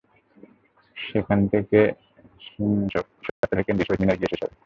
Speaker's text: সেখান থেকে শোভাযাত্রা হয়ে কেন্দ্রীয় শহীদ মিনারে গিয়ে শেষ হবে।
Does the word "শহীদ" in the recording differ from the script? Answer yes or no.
no